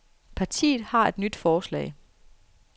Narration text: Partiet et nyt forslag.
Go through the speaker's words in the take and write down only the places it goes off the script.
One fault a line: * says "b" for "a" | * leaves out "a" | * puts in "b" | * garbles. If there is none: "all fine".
* puts in "har"